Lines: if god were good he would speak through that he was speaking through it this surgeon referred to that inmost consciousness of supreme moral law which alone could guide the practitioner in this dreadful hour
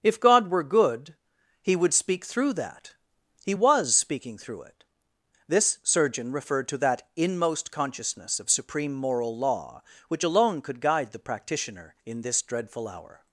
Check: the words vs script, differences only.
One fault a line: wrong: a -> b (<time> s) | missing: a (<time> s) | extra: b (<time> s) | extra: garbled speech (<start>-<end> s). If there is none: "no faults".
no faults